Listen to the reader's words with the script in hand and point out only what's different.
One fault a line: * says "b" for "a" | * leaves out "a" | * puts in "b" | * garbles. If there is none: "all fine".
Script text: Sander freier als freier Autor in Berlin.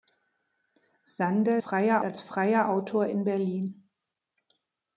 all fine